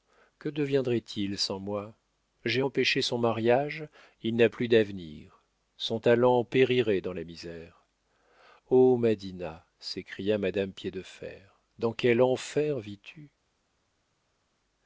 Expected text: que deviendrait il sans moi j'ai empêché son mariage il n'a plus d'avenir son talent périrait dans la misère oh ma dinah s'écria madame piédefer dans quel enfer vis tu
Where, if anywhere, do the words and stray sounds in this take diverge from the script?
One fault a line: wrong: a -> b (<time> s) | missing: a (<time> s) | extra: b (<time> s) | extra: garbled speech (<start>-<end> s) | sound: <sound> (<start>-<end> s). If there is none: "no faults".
no faults